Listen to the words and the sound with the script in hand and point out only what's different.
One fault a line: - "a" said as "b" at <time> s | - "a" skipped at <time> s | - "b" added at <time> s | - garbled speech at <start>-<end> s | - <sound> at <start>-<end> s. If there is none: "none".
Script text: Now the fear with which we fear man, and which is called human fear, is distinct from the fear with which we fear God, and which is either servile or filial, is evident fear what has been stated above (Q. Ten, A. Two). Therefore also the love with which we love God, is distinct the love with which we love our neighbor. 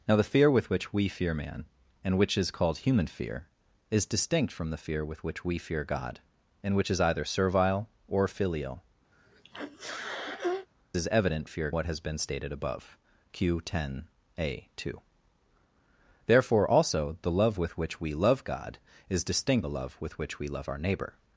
- sneeze at 9.1-10.7 s